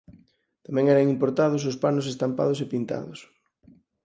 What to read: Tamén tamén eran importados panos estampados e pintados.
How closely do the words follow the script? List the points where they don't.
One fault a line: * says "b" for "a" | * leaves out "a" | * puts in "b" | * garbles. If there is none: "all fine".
* leaves out "tamén"
* puts in "os"